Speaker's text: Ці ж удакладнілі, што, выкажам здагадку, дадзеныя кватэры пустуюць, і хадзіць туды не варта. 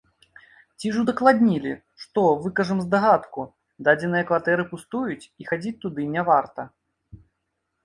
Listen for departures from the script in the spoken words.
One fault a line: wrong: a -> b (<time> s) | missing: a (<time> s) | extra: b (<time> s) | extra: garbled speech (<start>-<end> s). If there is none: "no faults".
no faults